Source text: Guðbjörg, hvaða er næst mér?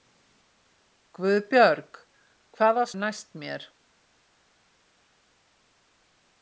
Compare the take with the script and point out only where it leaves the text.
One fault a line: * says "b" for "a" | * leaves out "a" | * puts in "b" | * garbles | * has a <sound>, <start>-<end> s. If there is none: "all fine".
all fine